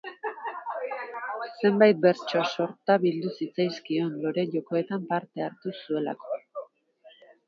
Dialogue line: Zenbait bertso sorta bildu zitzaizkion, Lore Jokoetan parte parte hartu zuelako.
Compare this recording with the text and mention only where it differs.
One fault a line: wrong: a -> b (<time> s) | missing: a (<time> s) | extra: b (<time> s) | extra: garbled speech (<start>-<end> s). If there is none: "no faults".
missing: parte (5.5 s)